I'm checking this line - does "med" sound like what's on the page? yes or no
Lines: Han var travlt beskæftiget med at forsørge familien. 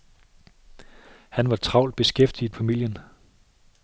no